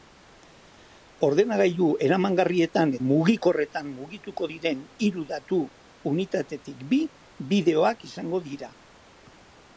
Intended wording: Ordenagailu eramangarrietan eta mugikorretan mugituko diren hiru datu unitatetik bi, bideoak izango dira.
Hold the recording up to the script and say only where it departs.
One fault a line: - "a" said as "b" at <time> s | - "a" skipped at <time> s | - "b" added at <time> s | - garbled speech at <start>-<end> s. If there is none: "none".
- "eta" skipped at 3.0 s